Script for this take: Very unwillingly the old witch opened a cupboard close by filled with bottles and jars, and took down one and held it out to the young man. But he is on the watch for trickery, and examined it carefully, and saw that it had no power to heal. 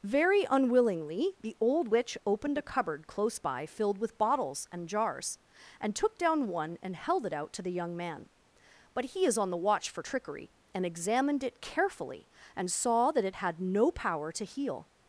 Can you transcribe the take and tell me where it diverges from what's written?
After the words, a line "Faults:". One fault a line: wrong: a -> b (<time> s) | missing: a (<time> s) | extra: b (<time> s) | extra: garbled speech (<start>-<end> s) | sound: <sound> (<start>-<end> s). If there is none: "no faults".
Very unwillingly the old witch opened a cupboard close by filled with bottles and jars, and took down one and held it out to the young man. But he is on the watch for trickery, and examined it carefully, and saw that it had no power to heal.
Faults:
no faults